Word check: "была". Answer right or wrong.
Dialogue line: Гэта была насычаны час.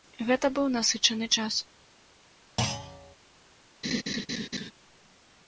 wrong